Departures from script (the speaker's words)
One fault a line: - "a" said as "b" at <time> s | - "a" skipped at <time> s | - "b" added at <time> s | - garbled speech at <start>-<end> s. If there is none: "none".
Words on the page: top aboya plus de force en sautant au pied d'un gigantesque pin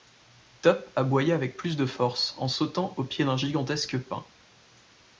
- "avec" added at 1.4 s